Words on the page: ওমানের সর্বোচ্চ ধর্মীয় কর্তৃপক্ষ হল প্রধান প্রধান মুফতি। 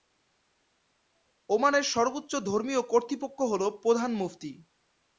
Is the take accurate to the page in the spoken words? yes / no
no